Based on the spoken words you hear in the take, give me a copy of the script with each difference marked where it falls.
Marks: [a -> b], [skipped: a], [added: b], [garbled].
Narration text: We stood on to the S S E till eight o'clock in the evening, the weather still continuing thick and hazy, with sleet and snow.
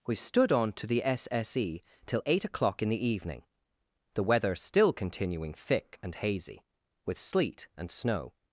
We stood on to the S S E till eight o'clock in the evening, the weather still continuing thick and hazy, with sleet and snow.